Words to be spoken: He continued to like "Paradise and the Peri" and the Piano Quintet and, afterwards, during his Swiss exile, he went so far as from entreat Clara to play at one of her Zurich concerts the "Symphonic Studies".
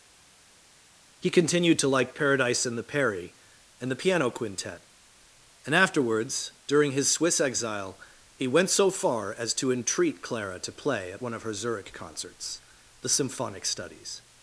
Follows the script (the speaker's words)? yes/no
no